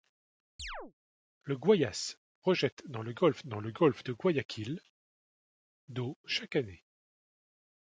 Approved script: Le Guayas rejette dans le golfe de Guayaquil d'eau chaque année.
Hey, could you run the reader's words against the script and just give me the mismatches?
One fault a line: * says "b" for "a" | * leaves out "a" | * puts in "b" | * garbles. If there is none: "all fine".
* puts in "dans le golfe"